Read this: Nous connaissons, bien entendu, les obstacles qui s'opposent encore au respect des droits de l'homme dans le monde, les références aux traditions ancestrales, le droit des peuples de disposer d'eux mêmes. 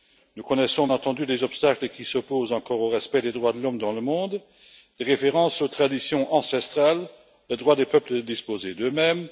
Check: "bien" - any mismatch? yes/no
yes